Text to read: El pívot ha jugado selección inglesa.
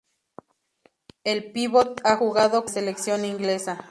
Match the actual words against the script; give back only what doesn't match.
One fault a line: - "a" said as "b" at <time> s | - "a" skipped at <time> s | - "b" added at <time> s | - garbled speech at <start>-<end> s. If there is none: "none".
none